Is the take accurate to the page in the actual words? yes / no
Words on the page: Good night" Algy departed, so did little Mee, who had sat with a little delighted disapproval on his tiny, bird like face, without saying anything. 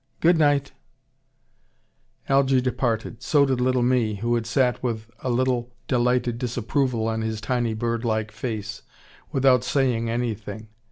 yes